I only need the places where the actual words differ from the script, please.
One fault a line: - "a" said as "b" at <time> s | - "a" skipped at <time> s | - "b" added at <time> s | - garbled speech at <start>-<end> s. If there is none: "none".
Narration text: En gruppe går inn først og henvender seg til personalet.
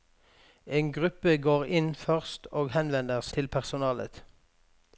- "seg" skipped at 3.3 s